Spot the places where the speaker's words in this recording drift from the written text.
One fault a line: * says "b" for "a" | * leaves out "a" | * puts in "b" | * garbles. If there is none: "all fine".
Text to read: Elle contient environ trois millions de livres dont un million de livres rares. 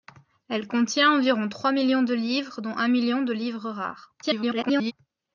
* garbles